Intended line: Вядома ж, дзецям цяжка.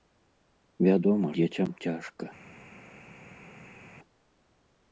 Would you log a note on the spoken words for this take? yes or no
yes